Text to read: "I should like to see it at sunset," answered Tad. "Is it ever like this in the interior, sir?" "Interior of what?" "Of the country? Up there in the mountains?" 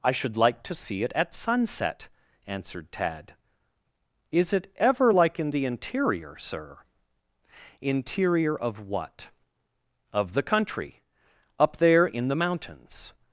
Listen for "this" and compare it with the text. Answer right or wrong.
wrong